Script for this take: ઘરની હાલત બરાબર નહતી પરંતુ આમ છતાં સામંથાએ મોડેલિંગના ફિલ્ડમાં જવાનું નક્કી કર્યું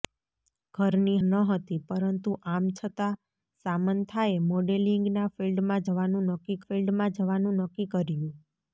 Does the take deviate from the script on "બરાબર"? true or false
true